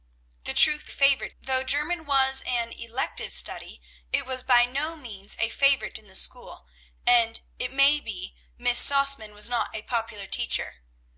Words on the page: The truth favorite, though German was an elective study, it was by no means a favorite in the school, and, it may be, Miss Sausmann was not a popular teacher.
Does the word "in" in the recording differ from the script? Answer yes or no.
no